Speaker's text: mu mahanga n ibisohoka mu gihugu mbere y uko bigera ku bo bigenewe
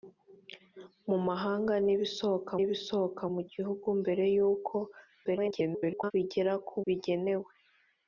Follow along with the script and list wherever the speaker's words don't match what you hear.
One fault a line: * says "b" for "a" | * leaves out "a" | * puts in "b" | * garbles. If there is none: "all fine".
* puts in "ibisohoka"
* garbles
* leaves out "bo"